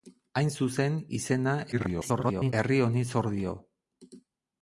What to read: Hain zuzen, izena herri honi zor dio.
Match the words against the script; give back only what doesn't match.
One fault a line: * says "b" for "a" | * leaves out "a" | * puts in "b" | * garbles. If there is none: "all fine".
* garbles